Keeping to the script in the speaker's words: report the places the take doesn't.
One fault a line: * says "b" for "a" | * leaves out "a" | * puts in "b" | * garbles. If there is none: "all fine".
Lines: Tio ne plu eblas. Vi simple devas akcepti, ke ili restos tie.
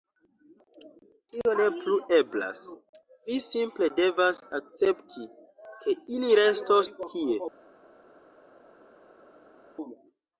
all fine